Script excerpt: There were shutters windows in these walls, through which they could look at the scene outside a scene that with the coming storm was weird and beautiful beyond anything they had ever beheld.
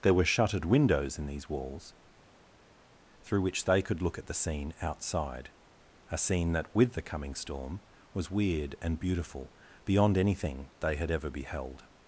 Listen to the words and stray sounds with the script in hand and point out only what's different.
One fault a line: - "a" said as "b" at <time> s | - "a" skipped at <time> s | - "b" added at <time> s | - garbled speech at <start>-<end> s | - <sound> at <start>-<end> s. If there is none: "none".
- "shutters" said as "shuttered" at 0.2 s